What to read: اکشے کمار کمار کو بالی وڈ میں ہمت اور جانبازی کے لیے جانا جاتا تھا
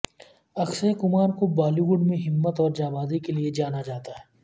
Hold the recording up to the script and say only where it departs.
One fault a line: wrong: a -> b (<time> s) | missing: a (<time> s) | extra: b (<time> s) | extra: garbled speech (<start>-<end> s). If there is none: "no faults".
missing: کمار (1.3 s)
wrong: تھا -> ہے (4.1 s)